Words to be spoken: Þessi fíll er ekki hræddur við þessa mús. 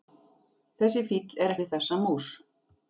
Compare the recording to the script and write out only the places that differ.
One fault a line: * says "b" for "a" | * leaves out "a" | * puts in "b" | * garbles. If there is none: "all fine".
* leaves out "ekki hræddur"